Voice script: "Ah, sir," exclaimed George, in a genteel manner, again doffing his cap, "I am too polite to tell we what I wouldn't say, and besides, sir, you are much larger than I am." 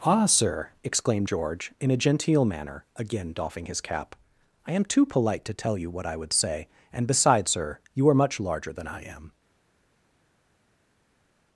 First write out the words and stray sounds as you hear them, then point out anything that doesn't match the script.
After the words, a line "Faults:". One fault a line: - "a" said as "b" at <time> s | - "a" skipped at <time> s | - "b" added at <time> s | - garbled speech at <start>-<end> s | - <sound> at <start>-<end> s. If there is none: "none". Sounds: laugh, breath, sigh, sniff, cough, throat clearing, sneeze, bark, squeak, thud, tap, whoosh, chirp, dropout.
"Ah, sir," exclaimed George, in a genteel manner, again doffing his cap, "I am too polite to tell you what I would say, and besides, sir, you are much larger than I am."
Faults:
- "we" said as "you" at 5.8 s
- "wouldn't" said as "would" at 6.1 s